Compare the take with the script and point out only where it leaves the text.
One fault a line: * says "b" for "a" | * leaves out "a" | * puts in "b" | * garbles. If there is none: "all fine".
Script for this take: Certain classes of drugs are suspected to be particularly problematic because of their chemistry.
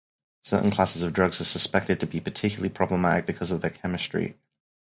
all fine